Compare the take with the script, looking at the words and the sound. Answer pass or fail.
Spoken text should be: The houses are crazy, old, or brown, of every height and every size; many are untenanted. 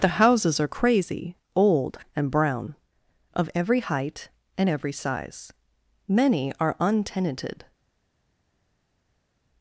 fail